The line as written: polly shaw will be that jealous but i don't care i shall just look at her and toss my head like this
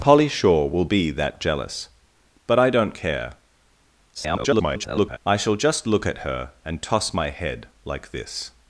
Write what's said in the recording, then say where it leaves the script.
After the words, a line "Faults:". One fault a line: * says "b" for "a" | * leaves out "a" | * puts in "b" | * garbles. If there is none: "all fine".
polly shaw will be that jealous but i don't care [garbled] i shall just look at her and toss my head like this
Faults:
* garbles